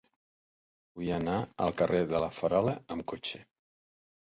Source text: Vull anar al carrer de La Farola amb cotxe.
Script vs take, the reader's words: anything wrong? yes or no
no